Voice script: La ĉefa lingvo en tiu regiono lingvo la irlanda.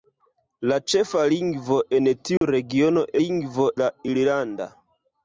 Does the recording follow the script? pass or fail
pass